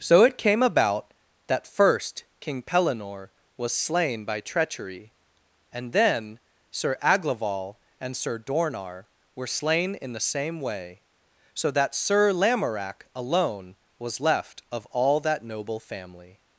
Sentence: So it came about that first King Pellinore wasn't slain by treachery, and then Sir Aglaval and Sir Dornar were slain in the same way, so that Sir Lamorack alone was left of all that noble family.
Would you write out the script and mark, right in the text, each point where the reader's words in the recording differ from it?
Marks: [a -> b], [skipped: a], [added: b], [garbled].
So it came about that first King Pellinore [wasn't -> was] slain by treachery, and then Sir Aglaval and Sir Dornar were slain in the same way, so that Sir Lamorack alone was left of all that noble family.